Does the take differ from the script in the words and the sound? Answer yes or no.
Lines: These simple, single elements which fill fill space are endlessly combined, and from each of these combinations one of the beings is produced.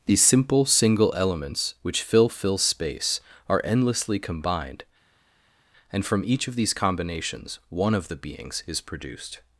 no